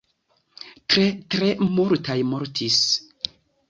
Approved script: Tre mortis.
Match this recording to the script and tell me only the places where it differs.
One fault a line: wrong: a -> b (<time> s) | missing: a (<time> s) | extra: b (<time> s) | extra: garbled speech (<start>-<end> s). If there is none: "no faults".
extra: tre multaj (1.4 s)